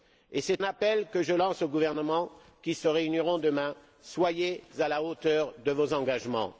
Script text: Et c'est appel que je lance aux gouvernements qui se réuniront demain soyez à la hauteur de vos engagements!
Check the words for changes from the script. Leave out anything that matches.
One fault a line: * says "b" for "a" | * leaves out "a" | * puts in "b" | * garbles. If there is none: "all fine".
all fine